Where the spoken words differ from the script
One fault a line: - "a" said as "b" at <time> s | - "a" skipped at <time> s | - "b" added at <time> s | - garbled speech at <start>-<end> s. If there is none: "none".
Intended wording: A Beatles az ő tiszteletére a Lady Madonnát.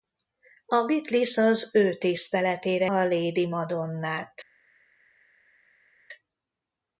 none